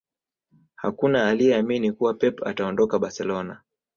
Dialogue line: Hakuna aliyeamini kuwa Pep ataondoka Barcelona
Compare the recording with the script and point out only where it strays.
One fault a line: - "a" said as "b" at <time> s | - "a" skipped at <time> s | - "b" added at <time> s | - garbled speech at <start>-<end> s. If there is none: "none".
none